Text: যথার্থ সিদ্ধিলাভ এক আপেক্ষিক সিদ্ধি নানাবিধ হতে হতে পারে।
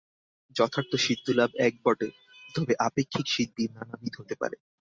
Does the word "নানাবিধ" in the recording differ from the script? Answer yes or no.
no